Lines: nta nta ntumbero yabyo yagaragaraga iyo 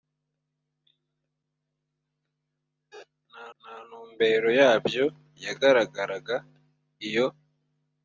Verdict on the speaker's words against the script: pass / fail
pass